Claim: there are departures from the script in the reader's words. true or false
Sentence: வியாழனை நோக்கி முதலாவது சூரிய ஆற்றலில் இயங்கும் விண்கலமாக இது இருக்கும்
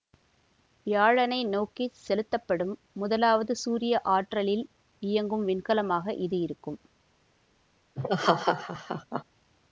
true